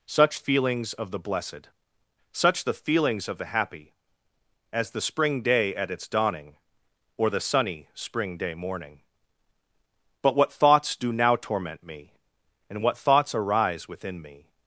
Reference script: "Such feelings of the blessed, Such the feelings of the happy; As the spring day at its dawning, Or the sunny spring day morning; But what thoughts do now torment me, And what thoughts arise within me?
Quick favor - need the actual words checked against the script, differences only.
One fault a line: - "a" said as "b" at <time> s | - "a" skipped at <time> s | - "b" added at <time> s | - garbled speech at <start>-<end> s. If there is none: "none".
none